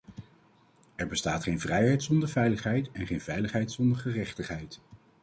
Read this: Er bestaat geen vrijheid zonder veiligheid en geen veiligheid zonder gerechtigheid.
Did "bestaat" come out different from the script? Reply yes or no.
no